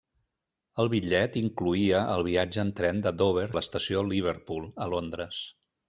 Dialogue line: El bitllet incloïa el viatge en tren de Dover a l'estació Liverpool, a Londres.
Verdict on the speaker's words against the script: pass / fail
pass